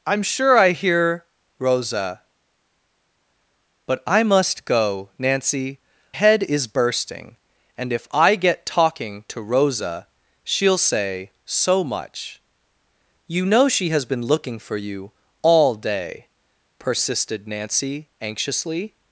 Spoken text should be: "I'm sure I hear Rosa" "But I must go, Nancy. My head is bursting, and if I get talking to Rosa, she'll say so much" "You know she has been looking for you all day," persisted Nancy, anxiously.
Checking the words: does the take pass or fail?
fail